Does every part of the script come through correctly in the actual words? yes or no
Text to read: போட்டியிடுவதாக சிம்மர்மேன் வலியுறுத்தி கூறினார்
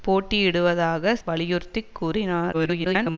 no